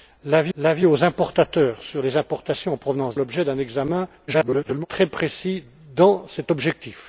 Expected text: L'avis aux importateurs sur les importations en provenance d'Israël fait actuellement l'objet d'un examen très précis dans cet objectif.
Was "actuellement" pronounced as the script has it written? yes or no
no